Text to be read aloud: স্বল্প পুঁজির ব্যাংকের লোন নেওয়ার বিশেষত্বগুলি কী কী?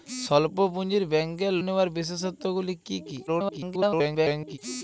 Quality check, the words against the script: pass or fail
fail